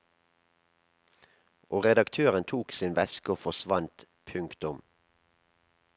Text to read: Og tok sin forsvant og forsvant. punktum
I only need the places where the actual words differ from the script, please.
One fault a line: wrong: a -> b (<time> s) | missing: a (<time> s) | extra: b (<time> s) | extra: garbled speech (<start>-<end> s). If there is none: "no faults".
extra: redaktøren (1.8 s)
wrong: forsvant -> veske (3.0 s)